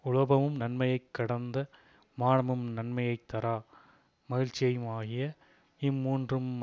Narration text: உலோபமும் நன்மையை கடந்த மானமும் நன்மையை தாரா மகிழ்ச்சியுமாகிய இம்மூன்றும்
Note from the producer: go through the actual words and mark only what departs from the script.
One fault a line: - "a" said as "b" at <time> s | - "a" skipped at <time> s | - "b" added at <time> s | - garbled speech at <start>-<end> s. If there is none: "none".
none